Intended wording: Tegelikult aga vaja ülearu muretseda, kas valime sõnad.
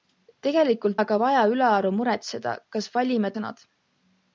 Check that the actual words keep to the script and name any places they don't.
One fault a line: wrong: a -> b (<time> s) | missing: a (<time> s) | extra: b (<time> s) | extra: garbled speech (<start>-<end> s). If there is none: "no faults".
no faults